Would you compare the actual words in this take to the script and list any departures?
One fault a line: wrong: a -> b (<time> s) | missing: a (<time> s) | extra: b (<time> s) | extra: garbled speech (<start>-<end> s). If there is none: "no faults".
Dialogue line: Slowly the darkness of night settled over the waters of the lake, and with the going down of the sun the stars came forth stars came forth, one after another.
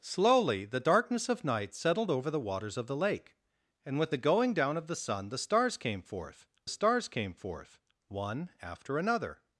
no faults